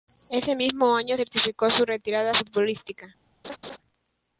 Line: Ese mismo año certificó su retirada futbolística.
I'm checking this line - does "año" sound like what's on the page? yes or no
yes